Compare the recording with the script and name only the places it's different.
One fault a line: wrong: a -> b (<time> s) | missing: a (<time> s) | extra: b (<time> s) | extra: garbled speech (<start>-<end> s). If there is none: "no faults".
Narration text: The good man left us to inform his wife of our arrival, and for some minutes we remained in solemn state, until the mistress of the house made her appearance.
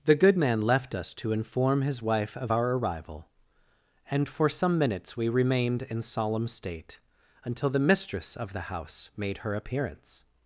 no faults